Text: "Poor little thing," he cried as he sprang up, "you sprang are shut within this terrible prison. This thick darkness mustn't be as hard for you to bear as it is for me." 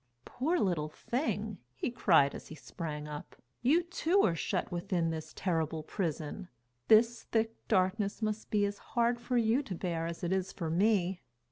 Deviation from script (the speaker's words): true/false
true